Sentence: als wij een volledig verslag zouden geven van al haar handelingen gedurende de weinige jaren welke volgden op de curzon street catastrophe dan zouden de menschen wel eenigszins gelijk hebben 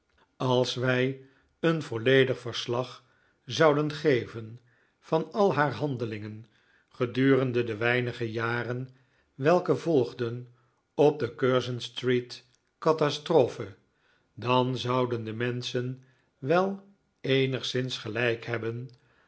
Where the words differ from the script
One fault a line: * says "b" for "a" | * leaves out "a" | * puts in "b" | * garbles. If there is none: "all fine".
all fine